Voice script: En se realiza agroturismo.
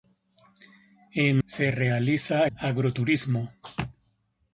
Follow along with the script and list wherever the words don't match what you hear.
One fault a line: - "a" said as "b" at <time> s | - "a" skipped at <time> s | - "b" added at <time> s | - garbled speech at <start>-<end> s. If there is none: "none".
none